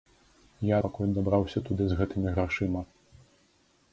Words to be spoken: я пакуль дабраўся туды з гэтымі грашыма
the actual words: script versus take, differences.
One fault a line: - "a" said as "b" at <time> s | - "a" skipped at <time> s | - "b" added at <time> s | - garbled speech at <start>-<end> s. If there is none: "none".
none